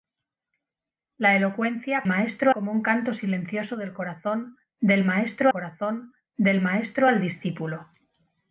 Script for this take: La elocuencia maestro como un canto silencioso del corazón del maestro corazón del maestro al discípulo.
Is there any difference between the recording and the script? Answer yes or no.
no